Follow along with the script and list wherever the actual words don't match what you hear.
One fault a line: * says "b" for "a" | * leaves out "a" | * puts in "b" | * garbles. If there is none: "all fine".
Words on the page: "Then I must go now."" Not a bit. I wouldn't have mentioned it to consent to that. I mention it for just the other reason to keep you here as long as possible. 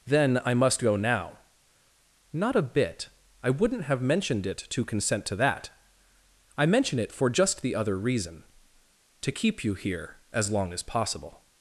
all fine